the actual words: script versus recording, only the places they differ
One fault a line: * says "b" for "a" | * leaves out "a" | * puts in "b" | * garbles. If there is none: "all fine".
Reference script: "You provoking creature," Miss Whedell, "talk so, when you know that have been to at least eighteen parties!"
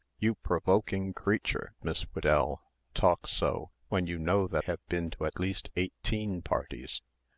all fine